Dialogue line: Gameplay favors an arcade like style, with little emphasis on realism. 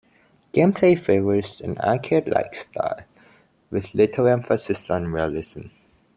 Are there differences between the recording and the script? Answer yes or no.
no